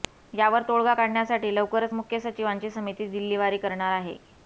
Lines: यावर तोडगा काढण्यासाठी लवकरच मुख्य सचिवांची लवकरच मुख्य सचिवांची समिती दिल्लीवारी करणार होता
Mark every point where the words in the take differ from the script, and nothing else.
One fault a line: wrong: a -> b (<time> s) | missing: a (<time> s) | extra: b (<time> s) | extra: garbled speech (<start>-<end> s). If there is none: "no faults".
missing: लवकरच मुख्य सचिवांची (2.7 s)
wrong: होता -> आहे (3.9 s)